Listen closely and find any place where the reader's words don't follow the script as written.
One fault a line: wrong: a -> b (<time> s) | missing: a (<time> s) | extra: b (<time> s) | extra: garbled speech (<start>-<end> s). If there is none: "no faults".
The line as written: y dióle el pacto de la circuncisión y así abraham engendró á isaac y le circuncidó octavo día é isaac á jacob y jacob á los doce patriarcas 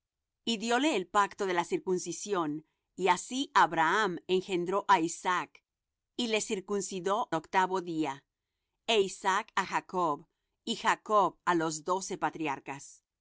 no faults